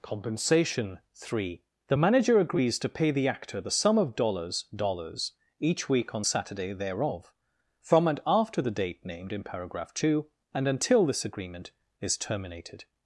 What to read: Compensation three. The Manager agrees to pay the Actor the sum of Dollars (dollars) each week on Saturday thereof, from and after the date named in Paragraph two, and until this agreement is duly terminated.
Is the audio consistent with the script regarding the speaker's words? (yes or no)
no